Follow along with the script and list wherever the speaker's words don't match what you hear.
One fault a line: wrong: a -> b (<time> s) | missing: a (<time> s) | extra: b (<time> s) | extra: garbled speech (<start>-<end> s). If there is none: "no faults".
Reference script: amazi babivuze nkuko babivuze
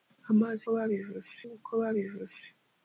no faults